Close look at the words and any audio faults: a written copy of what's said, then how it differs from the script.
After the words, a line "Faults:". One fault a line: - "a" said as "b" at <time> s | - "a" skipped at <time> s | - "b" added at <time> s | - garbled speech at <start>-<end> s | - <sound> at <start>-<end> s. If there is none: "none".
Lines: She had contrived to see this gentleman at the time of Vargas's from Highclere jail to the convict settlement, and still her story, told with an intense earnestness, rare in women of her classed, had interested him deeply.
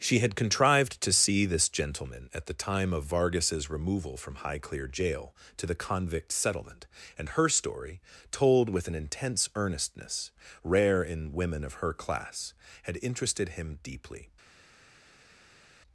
She had contrived to see this gentleman at the time of Vargas's removal from Highclere jail to the convict settlement, and her story, told with an intense earnestness, rare in women of her class, had interested him deeply.
Faults:
- "removal" added at 3.7 s
- "still" skipped at 7.3 s
- "classed" said as "class" at 11.9 s